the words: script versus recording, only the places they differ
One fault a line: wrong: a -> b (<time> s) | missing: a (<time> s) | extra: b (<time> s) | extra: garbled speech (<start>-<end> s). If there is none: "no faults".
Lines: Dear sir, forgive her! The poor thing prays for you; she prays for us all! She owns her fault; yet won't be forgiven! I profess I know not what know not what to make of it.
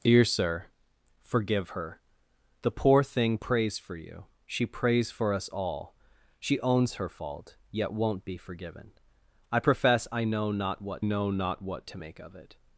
no faults